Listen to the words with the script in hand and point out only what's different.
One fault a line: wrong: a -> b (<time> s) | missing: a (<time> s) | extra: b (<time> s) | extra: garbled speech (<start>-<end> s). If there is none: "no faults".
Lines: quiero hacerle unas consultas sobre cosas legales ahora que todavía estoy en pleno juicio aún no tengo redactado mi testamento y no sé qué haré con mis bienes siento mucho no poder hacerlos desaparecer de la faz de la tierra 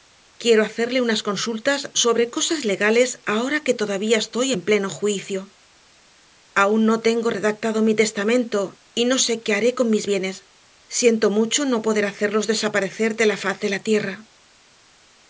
no faults